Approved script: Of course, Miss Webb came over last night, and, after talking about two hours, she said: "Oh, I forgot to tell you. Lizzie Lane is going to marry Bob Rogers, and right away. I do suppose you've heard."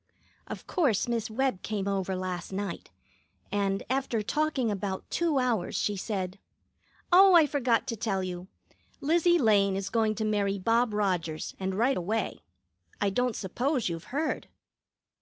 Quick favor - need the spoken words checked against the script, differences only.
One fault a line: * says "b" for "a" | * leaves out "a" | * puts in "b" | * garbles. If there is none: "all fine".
* says "don't" for "do"